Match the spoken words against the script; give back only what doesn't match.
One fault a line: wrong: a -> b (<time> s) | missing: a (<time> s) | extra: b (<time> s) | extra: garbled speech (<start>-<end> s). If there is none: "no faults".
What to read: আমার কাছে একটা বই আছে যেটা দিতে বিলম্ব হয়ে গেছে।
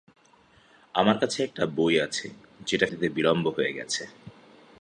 no faults